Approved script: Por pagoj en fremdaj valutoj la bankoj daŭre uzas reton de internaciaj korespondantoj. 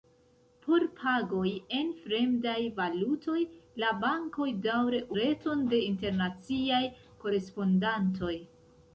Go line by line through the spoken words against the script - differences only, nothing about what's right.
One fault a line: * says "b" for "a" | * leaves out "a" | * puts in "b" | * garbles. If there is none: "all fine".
* leaves out "uzas"